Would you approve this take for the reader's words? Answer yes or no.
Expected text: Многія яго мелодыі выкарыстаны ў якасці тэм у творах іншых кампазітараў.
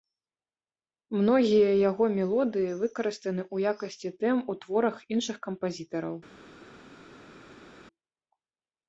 yes